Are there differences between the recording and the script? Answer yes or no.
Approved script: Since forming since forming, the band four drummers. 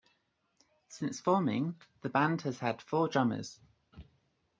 yes